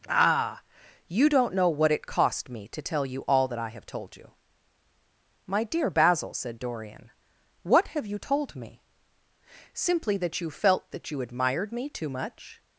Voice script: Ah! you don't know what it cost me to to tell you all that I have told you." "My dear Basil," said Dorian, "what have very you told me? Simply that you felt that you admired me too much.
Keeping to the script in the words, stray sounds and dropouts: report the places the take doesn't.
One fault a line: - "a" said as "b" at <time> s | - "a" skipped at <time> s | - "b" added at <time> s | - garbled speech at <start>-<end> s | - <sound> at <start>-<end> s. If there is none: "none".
- "to" skipped at 2.8 s
- "very" skipped at 8.1 s